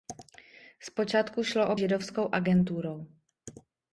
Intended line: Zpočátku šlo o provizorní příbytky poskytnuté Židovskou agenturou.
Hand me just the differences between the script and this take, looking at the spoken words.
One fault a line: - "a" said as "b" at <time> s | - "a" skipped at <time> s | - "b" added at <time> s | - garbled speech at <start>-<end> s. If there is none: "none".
- "provizorní příbytky poskytnuté" skipped at 1.8 s